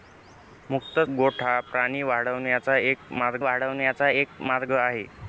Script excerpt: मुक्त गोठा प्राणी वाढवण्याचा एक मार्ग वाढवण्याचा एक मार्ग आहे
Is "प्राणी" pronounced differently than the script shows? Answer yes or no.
no